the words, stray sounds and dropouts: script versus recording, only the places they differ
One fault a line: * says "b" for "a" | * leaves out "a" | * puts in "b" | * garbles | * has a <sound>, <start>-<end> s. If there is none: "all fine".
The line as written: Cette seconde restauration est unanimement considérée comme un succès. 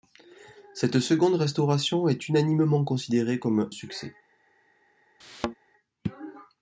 * leaves out "un"
* has a thud, 5.2-5.6 s